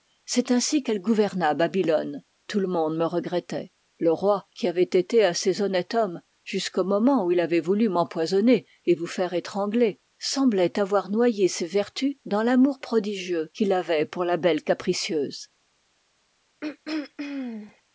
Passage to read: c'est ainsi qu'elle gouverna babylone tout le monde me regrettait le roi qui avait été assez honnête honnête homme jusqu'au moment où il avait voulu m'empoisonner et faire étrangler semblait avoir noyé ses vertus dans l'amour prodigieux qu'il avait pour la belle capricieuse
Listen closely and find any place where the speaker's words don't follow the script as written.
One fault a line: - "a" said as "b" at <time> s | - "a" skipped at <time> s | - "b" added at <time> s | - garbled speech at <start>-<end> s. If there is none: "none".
- "honnête" skipped at 5.9 s
- "vous" added at 8.9 s